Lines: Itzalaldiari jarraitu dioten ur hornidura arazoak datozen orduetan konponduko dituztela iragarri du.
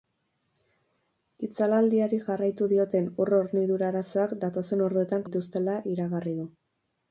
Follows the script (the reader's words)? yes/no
no